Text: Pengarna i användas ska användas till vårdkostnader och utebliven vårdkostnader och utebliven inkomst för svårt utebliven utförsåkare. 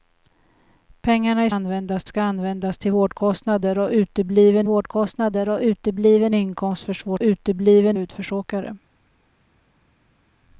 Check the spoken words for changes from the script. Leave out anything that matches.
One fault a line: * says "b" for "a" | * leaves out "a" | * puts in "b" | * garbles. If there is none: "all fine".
all fine